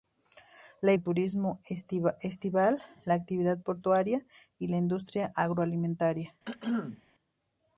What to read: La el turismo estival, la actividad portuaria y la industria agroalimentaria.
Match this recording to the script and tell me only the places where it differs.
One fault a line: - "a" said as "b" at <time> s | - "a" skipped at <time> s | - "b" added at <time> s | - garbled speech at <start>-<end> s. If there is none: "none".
none